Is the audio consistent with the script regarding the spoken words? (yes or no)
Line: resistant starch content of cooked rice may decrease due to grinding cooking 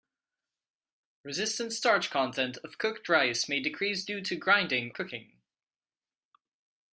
yes